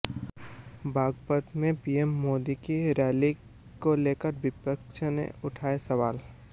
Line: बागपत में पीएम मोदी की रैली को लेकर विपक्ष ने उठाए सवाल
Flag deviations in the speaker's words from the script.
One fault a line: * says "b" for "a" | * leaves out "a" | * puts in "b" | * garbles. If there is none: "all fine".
all fine